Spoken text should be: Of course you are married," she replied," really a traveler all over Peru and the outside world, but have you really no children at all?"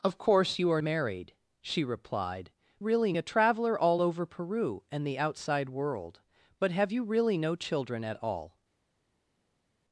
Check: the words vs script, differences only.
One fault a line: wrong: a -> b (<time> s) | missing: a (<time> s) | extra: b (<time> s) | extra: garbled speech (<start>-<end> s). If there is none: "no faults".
no faults